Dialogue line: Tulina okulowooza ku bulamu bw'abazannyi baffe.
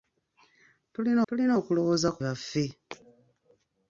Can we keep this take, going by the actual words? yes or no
no